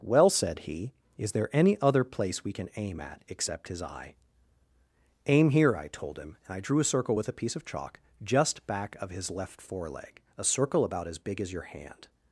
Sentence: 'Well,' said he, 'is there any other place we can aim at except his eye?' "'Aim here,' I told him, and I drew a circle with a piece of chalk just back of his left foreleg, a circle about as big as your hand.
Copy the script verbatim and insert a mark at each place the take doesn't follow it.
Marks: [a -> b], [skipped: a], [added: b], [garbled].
'Well,' said he, 'is there any other place we can aim at except his eye?' "'Aim here,' I told him, and I drew a circle with a piece of chalk just back of his left foreleg, a circle about as big as your hand.